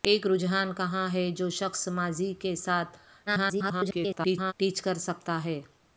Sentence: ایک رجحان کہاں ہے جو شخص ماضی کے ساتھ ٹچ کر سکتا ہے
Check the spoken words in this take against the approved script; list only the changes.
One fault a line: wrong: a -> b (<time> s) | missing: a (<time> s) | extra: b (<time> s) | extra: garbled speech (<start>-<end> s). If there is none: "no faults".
extra: garbled speech (3.3-4.5 s)